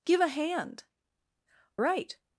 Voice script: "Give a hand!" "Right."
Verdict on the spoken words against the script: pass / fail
pass